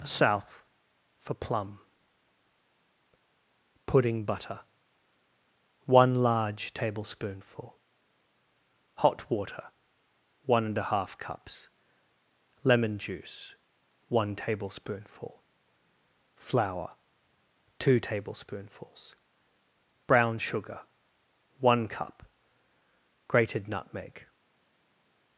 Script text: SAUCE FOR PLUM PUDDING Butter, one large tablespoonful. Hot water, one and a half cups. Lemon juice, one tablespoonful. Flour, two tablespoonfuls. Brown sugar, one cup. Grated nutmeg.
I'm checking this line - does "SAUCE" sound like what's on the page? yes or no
no